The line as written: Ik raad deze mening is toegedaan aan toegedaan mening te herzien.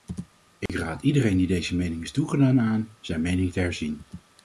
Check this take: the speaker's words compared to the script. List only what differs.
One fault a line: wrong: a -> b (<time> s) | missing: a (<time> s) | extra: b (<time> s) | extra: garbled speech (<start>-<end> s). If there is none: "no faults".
extra: iedereen die (1.0 s)
wrong: toegedaan -> zijn (3.0 s)